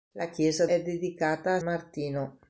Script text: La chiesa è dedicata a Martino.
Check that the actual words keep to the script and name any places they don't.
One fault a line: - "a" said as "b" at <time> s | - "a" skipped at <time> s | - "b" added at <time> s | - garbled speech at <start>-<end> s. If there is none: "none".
none